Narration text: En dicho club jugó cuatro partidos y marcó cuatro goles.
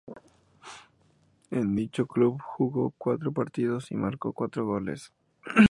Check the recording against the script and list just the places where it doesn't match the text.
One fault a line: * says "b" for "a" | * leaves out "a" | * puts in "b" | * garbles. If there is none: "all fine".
all fine